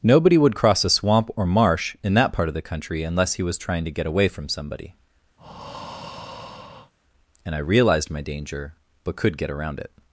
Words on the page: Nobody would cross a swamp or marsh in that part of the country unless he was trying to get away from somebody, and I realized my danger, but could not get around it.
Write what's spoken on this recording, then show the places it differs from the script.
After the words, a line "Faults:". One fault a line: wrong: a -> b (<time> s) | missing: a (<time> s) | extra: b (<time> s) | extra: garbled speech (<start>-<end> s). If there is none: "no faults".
Nobody would cross a swamp or marsh in that part of the country unless he was trying to get away from somebody, and I realized my danger, but could get around it.
Faults:
missing: not (9.4 s)